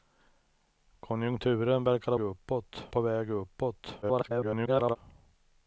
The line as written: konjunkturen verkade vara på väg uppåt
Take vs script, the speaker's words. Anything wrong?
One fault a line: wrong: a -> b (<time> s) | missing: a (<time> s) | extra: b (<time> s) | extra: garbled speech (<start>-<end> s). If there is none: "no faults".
wrong: vara -> uppåt (2.2 s)
extra: garbled speech (4.0-5.0 s)